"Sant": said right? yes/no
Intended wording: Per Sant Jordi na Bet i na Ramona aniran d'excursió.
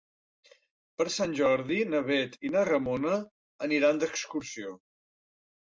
yes